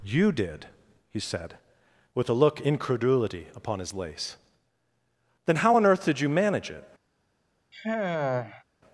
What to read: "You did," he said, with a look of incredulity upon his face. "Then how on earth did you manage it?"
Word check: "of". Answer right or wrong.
wrong